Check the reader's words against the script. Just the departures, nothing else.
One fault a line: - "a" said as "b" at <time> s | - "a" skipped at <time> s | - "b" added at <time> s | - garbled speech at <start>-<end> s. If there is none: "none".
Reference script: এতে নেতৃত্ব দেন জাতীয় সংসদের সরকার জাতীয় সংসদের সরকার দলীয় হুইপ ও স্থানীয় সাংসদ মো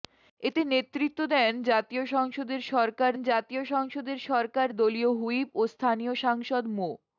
none